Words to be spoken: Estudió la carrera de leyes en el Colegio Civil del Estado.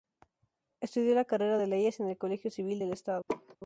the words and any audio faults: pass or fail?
fail